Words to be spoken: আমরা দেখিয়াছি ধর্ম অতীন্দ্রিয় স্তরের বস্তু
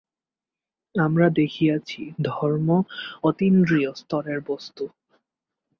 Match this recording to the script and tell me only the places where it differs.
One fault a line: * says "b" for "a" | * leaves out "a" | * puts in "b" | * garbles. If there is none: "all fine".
all fine